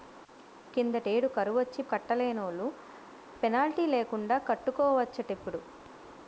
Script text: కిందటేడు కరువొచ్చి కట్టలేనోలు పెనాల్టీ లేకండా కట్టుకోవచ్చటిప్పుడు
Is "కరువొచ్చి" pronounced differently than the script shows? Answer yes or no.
no